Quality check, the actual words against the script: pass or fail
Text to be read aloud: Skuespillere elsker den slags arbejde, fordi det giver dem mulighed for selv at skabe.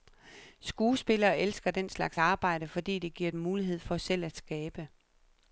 pass